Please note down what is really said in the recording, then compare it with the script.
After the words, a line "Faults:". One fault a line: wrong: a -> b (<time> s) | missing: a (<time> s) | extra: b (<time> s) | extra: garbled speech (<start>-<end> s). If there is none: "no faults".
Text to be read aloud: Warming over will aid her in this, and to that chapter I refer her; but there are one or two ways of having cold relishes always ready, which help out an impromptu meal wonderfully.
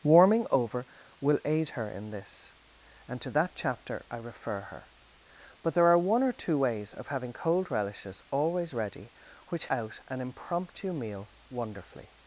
Warming over will aid her in this, and to that chapter I refer her; but there are one or two ways of having cold relishes always ready, which out an impromptu meal wonderfully.
Faults:
missing: help (9.7 s)